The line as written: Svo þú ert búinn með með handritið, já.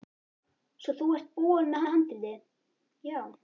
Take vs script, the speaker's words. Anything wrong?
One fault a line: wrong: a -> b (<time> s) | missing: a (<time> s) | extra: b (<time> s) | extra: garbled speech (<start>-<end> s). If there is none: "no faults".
no faults